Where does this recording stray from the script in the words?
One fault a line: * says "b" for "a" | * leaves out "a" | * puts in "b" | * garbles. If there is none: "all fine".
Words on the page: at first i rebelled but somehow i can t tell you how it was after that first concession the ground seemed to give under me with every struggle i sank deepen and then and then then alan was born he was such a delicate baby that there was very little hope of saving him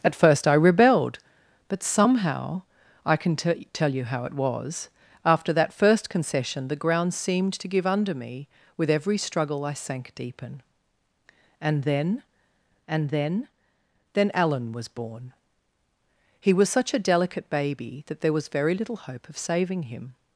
all fine